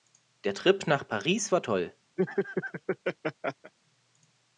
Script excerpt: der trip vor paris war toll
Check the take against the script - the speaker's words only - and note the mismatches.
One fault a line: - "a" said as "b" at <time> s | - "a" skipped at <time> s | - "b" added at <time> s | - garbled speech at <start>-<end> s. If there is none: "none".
- "vor" said as "nach" at 0.9 s